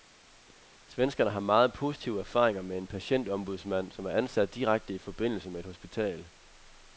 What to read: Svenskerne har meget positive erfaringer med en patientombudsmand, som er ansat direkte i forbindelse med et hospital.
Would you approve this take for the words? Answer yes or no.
yes